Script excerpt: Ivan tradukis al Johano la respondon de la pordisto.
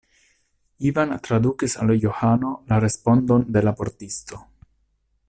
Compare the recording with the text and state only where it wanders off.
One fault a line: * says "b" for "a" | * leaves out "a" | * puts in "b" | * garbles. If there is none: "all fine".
all fine